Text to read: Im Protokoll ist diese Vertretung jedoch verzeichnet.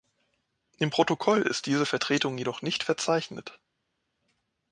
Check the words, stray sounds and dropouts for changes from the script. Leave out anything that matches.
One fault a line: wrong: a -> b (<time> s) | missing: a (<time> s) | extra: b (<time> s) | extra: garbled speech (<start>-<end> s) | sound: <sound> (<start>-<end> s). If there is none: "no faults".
extra: nicht (2.6 s)